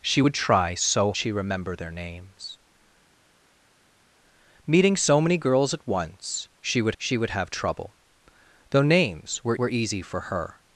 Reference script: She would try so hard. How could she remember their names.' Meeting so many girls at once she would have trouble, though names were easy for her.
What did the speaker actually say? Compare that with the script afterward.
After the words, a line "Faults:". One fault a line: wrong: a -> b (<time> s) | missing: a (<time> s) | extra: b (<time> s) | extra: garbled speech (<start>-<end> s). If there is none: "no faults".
She would try so she remember their names.' Meeting so many girls at once she would she would have trouble, though names were were easy for her.
Faults:
missing: hard How could (1.1 s)
extra: she would (7.0 s)
extra: were (9.6 s)